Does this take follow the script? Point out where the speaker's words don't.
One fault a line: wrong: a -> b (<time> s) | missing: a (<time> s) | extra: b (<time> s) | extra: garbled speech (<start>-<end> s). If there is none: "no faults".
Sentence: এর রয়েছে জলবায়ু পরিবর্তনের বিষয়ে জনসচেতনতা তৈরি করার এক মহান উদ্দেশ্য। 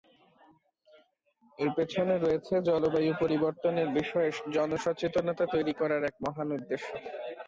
extra: পেছনে (1.8 s)